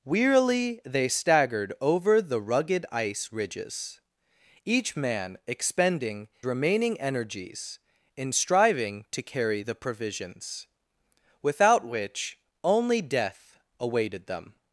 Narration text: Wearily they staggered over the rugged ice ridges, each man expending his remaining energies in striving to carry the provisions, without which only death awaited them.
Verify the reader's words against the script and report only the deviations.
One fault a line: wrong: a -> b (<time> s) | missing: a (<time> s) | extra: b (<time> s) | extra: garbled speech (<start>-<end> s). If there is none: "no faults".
missing: his (6.3 s)